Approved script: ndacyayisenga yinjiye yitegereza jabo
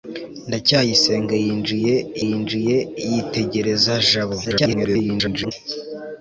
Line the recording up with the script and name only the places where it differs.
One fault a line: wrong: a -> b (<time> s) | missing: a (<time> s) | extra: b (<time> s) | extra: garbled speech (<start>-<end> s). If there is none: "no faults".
extra: yinjiye (2.3 s)
extra: garbled speech (4.4-5.5 s)